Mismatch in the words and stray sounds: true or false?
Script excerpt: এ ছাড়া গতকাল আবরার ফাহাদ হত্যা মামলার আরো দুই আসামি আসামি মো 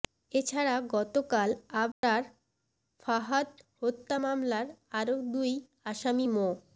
true